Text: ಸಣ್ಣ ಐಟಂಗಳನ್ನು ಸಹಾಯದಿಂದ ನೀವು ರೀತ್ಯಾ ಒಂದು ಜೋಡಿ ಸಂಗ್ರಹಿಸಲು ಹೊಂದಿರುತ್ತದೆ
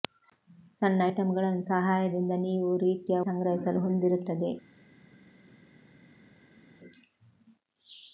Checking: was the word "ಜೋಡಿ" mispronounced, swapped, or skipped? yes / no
yes